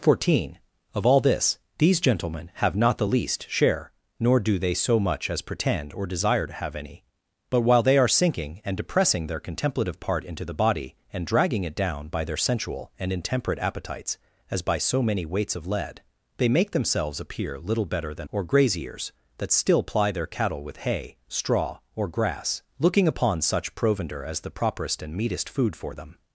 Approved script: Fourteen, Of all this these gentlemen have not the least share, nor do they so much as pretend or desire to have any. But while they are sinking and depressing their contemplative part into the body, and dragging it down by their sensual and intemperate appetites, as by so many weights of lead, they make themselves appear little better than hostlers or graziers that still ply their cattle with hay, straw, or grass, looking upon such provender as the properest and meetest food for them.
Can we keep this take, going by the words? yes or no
no